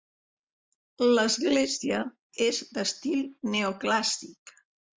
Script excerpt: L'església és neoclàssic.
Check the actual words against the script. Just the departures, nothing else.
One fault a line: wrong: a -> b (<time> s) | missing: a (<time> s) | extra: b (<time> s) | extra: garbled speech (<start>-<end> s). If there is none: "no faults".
extra: d'estil (2.8 s)